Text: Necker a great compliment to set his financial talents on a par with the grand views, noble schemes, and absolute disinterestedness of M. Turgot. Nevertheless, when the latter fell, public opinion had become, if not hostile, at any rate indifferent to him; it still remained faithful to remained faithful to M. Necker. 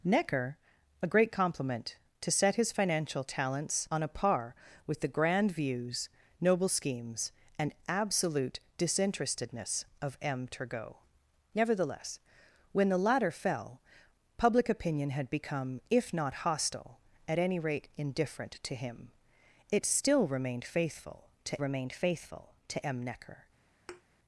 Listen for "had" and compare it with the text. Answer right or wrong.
right